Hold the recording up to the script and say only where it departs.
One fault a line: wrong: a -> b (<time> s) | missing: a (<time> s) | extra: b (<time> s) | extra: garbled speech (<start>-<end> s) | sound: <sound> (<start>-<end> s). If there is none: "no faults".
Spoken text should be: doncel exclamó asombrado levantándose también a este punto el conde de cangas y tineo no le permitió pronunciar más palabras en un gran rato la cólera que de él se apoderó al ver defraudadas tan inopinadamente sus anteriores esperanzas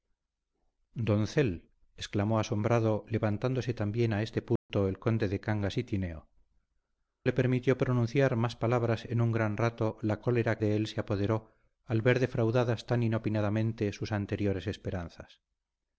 sound: dropout (4.6-4.7 s)
missing: no (6.3 s)
missing: que (10.6 s)